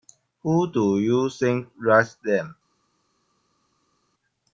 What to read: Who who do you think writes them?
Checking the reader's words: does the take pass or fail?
fail